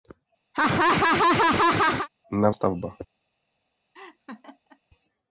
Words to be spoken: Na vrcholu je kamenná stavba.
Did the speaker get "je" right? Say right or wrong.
wrong